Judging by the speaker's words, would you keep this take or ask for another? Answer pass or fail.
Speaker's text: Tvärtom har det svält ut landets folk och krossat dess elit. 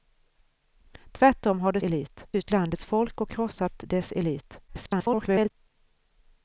fail